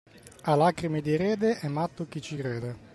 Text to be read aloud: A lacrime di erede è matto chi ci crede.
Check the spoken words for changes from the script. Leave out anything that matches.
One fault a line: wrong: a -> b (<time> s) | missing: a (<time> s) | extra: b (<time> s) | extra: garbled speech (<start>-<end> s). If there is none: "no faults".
no faults